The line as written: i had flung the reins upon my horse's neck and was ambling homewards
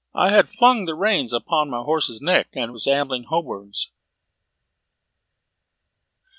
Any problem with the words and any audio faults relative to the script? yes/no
no